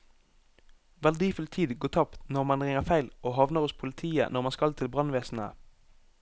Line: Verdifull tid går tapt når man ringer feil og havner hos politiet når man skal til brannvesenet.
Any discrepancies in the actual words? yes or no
no